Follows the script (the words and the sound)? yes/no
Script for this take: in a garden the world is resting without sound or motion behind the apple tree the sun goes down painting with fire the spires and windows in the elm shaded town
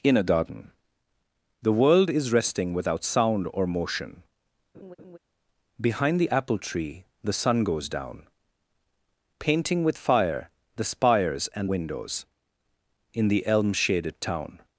no